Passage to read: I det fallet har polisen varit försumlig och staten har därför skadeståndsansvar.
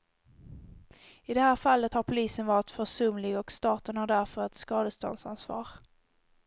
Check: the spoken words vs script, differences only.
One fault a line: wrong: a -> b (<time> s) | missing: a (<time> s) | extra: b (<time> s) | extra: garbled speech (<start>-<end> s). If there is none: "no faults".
extra: här (1.4 s)
extra: ett (4.4 s)